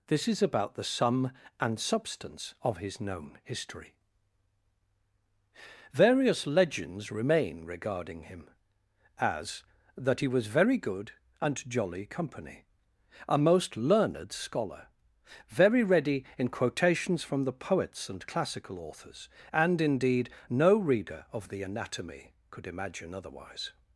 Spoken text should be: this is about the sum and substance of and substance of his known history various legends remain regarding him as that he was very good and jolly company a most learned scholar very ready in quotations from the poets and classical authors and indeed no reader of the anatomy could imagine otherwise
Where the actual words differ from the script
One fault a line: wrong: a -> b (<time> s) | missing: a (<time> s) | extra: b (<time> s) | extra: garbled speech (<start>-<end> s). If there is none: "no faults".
missing: and substance of (2.8 s)